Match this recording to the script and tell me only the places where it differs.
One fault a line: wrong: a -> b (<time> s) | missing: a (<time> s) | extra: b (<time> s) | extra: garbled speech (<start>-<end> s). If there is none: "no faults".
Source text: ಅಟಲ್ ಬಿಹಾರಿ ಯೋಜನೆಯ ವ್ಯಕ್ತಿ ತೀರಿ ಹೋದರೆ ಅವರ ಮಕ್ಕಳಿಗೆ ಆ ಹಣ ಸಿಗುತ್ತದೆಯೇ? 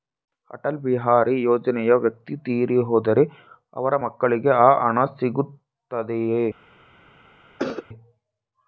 no faults